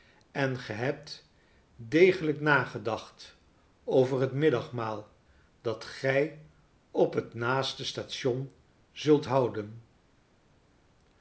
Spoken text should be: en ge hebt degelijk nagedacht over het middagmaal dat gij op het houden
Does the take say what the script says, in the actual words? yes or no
no